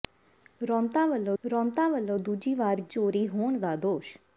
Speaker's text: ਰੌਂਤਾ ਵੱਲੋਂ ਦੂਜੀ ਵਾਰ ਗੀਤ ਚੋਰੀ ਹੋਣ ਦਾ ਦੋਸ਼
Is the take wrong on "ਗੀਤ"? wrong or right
wrong